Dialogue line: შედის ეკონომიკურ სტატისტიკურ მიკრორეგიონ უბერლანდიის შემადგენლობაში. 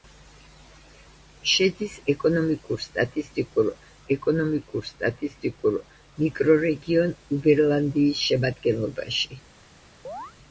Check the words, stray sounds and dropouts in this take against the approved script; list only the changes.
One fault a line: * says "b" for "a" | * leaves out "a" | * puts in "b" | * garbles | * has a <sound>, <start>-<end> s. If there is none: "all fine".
* puts in "ეკონომიკურ სტატისტიკურ"
* has a chirp, 10.0-10.3 s